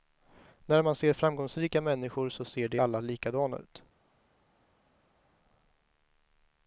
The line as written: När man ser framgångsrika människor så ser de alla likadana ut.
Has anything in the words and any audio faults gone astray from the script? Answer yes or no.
no